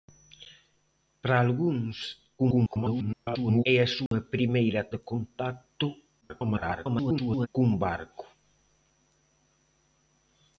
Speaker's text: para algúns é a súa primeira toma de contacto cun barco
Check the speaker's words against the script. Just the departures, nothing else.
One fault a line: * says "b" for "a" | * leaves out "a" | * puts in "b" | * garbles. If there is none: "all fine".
* garbles
* leaves out "toma"
* garbles